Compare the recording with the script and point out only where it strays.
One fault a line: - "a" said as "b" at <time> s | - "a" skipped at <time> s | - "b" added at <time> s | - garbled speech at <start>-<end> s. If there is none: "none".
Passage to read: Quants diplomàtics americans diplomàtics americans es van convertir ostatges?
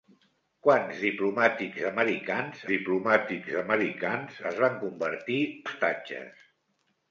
none